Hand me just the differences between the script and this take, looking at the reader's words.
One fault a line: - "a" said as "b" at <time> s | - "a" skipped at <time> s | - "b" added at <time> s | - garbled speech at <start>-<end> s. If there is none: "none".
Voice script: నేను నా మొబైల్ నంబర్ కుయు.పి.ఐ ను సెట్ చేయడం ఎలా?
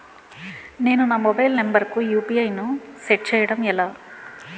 none